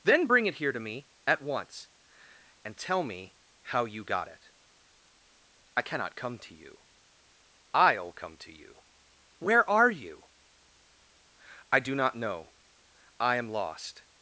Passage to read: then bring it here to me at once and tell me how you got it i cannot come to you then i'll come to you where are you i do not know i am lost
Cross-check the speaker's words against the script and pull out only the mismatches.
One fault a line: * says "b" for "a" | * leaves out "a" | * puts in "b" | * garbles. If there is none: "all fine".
* leaves out "then"